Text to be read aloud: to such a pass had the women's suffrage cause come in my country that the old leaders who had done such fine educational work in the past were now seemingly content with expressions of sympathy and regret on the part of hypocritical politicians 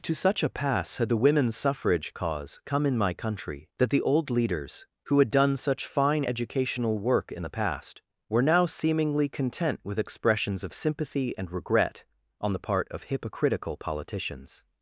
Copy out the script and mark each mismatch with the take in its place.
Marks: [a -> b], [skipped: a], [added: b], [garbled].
to such a pass had the women's suffrage cause come in my country that the old leaders who had done such fine educational work in the past were now seemingly content with expressions of sympathy and regret on the part of hypocritical politicians